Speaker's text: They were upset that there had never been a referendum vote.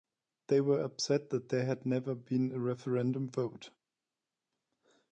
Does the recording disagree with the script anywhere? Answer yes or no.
no